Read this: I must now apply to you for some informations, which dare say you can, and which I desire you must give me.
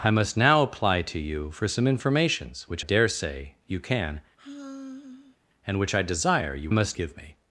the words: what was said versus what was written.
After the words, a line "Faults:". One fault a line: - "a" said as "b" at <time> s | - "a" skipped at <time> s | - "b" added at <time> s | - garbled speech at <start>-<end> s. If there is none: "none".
I must now apply to you for some informations, which dare say you can, and which I desire you must give me.
Faults:
none